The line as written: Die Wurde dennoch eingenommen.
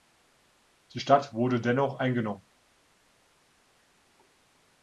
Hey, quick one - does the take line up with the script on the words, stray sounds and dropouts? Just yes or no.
no